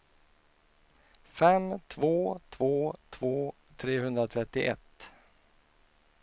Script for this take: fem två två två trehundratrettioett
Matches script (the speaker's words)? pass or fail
pass